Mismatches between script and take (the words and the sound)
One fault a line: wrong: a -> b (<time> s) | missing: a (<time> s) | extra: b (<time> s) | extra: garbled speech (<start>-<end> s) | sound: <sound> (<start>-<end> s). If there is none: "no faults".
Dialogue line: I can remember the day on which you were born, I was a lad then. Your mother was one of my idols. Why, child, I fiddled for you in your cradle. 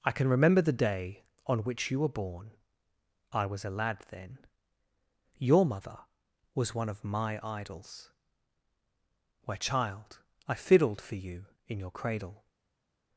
wrong: Why -> Where (9.4 s)